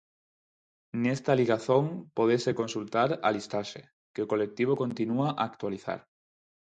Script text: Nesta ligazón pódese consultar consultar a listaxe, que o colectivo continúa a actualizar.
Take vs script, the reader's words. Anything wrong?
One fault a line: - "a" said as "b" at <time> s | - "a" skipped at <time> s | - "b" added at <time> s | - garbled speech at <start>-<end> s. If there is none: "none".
- "consultar" skipped at 3.1 s